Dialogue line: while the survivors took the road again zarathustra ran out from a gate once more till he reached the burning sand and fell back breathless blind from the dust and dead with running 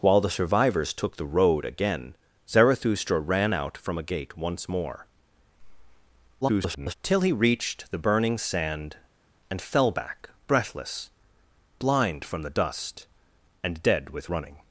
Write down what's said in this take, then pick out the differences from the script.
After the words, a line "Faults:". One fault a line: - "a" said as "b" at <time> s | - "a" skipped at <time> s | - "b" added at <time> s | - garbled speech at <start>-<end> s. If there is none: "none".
while the survivors took the road again zarathustra ran out from a gate once more [garbled] till he reached the burning sand and fell back breathless blind from the dust and dead with running
Faults:
- garbled speech at 6.4-6.9 s